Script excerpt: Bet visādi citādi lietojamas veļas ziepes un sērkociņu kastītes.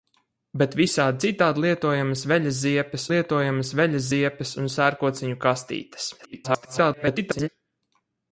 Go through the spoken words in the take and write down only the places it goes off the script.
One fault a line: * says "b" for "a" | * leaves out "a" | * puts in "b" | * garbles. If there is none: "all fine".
* puts in "lietojamas veļas ziepes"
* garbles